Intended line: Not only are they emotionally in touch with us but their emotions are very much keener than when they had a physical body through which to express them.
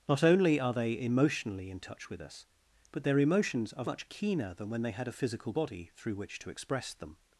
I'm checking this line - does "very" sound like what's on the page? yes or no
no